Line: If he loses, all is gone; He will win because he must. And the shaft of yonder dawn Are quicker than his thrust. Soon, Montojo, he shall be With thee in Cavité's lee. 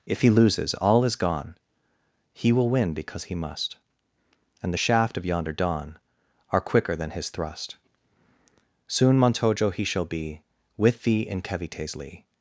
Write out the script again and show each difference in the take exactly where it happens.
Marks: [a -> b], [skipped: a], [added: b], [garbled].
If he loses, all is gone; He will win because he must. And the shaft of yonder dawn Are quicker than his thrust. Soon, Montojo, he shall be With thee in Cavité's lee.